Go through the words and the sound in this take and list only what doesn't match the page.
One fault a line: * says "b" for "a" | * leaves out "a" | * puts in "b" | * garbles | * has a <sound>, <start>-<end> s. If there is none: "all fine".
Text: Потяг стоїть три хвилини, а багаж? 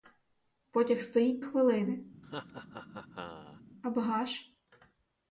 * leaves out "три"
* has a laugh, 2.2-3.6 s